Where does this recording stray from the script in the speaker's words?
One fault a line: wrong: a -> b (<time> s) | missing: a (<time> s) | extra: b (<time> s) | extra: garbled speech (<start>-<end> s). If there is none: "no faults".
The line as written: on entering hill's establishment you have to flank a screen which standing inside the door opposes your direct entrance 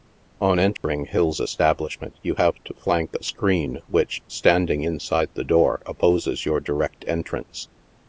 no faults